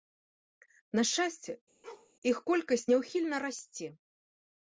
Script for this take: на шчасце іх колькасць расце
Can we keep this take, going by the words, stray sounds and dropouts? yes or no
no